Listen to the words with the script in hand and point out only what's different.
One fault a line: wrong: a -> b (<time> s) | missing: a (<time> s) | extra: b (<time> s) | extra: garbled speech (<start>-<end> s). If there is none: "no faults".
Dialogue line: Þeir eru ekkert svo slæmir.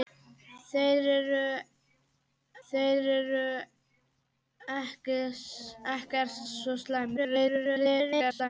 extra: þeir eru (2.7 s)
extra: garbled speech (7.2-8.5 s)